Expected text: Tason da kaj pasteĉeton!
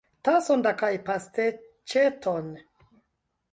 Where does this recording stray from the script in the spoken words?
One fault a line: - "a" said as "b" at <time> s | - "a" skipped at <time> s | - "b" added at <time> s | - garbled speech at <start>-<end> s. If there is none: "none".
none